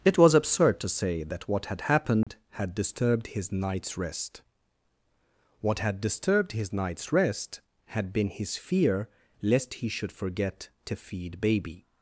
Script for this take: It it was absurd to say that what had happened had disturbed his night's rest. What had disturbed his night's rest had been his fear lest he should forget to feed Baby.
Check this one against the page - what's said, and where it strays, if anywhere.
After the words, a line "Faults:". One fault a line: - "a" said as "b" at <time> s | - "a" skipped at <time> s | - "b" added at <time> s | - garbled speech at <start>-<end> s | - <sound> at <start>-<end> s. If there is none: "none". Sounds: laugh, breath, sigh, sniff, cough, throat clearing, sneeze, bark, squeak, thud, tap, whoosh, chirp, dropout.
It was absurd to say that what had happened had disturbed his night's rest. What had disturbed his night's rest had been his fear lest he should forget to feed Baby.
Faults:
- "it" skipped at 0.2 s
- dropout at 2.2-2.3 s